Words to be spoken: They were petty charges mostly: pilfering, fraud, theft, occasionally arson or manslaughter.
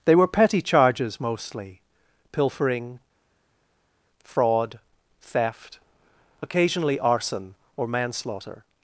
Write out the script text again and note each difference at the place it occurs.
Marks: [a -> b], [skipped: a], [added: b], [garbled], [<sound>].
They were petty charges mostly: pilfering, fraud, theft, occasionally arson or manslaughter.